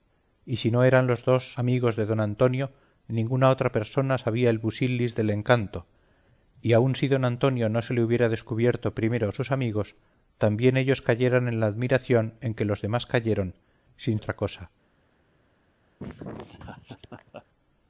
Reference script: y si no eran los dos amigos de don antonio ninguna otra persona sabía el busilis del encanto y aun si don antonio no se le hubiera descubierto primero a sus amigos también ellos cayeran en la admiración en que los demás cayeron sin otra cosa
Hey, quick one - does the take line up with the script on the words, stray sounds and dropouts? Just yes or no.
no